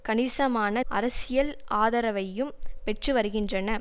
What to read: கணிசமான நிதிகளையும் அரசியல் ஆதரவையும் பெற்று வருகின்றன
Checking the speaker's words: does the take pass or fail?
fail